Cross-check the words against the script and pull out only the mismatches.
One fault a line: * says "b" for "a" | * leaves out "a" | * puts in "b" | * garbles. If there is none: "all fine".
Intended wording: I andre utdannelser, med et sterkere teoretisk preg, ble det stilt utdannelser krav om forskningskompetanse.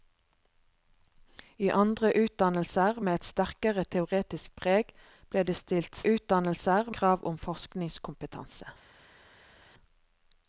all fine